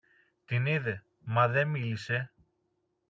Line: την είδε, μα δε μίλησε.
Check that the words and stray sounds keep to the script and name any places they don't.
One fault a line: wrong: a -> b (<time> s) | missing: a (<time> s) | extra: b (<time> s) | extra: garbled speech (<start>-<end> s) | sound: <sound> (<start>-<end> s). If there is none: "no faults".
no faults